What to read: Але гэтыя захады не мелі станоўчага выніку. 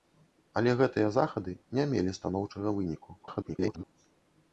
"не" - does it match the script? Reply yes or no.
yes